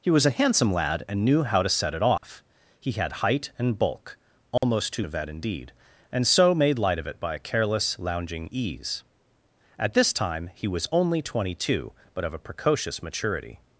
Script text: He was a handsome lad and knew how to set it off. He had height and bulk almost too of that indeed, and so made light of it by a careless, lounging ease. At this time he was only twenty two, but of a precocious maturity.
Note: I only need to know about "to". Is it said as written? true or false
true